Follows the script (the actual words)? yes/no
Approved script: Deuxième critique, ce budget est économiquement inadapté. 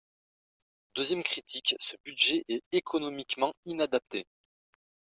yes